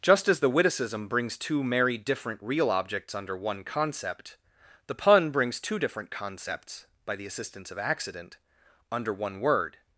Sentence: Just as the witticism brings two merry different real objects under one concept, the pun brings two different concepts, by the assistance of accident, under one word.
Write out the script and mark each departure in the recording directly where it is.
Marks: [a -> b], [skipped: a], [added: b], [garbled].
Just as the witticism brings two merry different real objects under one concept, the pun brings two different concepts, by the assistance of accident, under one word.